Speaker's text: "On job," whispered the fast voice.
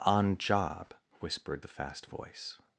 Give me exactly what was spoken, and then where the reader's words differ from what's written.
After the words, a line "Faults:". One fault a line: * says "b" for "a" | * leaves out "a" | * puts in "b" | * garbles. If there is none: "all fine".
"On job," whispered the fast voice.
Faults:
all fine